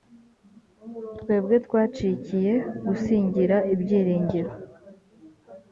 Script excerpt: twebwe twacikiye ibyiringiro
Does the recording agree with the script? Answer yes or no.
no